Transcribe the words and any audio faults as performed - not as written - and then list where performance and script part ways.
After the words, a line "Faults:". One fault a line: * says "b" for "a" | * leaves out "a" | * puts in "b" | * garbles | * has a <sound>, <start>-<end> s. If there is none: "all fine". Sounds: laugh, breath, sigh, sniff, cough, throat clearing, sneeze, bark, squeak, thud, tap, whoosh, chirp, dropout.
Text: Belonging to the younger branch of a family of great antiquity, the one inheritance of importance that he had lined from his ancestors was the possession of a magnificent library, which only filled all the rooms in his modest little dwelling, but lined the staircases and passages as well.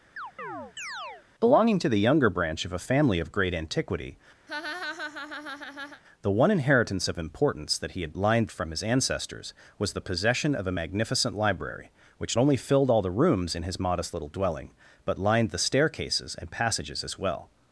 Belonging to the younger branch of a family of great antiquity, the one inheritance of importance that he had lined from his ancestors was the possession of a magnificent library, which only filled all the rooms in his modest little dwelling, but lined the staircases and passages as well.
Faults:
* has a chirp, 0.2-1.3 s
* has a laugh, 4.5-6.0 s